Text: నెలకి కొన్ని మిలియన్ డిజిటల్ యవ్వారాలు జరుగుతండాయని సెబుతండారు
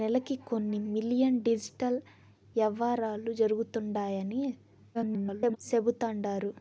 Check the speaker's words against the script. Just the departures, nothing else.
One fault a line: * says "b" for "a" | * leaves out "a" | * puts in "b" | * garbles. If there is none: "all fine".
* garbles